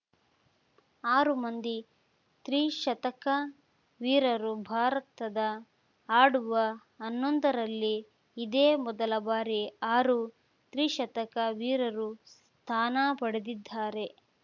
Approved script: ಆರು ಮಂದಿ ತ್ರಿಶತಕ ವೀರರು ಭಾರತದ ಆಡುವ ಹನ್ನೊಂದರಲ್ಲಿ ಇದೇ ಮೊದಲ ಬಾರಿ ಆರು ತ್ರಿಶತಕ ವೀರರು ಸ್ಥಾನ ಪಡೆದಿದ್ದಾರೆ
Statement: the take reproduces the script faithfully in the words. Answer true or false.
true